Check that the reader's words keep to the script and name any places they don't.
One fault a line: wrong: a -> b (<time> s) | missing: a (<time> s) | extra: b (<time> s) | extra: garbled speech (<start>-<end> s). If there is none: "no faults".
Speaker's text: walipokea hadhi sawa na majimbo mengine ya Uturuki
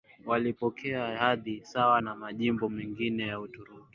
no faults